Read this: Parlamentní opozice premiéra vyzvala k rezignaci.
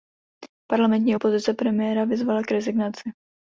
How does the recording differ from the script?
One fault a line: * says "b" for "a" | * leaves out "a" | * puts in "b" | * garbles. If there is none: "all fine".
all fine